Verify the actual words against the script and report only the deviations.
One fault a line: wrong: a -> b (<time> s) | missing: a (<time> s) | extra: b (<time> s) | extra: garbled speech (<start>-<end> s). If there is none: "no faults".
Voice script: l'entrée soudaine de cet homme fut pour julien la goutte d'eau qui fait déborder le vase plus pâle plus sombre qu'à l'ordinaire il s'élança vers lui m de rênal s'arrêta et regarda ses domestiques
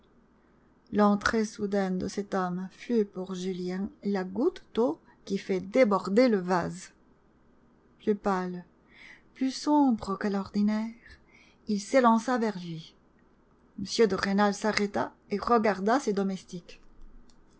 no faults